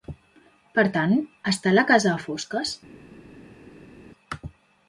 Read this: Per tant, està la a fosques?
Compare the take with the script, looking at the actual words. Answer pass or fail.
fail